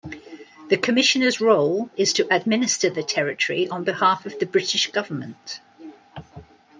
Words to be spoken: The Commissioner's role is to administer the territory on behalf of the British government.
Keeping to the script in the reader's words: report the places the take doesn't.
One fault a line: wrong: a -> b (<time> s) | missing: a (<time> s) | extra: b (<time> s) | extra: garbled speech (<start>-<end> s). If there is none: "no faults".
no faults